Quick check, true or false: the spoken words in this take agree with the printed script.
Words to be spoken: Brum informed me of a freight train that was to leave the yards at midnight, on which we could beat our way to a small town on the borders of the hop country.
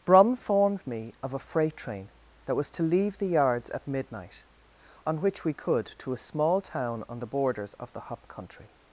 false